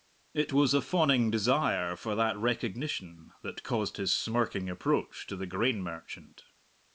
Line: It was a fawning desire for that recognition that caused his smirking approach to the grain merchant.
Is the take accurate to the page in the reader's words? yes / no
yes